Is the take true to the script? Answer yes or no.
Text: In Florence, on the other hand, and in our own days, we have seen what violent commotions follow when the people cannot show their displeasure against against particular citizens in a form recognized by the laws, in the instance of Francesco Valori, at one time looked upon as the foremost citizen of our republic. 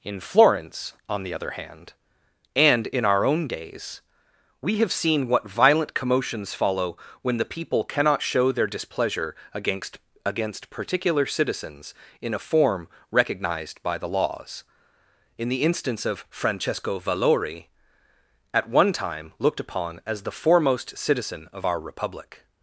yes